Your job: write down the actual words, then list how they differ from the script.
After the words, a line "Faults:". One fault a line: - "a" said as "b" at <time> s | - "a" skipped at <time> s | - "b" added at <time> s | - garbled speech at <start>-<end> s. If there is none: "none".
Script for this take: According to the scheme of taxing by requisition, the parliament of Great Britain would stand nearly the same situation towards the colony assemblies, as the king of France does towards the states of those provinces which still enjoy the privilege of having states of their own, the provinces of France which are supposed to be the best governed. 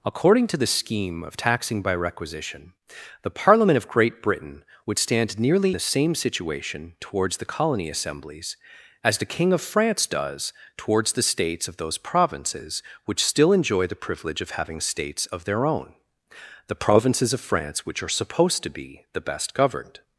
According to the scheme of taxing by requisition, the parliament of Great Britain would stand nearly the same situation towards the colony assemblies, as the king of France does towards the states of those provinces which still enjoy the privilege of having states of their own, the provinces of France which are supposed to be the best governed.
Faults:
none